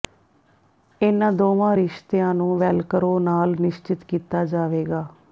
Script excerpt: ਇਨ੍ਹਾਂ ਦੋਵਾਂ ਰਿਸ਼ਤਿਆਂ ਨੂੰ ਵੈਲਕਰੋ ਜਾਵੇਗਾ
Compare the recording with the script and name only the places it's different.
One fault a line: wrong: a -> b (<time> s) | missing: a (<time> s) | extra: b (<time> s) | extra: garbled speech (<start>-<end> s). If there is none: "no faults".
extra: ਨਾਲ ਨਿਸ਼ਚਿਤ ਕੀਤਾ (3.2 s)